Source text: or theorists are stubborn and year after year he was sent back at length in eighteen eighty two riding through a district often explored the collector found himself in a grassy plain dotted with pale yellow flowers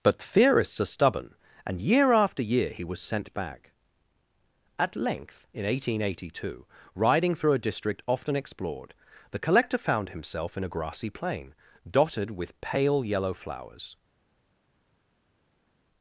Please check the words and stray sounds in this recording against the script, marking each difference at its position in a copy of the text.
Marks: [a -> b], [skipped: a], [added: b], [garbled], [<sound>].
[or -> but] theorists are stubborn and year after year he was sent back at length in eighteen eighty two riding through a district often explored the collector found himself in a grassy plain dotted with pale yellow flowers